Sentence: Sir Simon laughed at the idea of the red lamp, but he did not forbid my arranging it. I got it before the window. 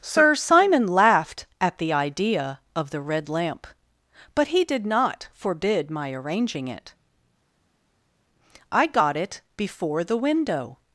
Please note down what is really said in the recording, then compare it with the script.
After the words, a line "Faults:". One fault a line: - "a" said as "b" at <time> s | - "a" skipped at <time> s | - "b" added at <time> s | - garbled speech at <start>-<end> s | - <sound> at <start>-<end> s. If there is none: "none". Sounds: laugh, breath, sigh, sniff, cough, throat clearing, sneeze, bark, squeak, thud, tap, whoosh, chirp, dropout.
Sir Simon laughed at the idea of the red lamp, but he did not forbid my arranging it. I got it before the window.
Faults:
none